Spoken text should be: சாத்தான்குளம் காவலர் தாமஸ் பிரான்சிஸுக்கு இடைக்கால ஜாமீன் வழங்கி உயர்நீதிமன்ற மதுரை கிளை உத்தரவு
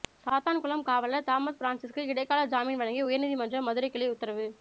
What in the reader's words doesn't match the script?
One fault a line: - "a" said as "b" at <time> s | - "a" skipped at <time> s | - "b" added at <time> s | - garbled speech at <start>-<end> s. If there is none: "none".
none